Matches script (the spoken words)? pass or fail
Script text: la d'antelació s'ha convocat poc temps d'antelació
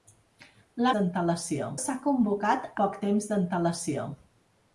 pass